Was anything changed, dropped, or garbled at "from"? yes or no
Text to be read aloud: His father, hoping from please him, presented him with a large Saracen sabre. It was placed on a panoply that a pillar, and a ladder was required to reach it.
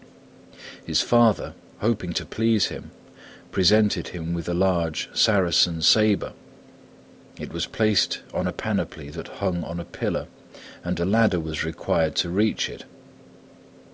yes